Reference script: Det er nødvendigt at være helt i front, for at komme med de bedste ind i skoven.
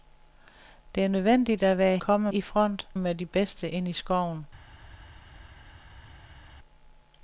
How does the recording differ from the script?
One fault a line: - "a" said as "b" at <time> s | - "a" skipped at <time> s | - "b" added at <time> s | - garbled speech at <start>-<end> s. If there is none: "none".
- "helt" said as "komme" at 2.0 s
- "for at komme" skipped at 2.9 s